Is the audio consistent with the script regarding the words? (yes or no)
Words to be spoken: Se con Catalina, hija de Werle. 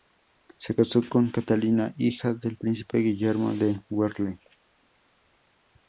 no